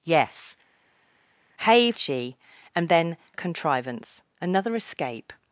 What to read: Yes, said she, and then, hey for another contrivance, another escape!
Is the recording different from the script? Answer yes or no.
yes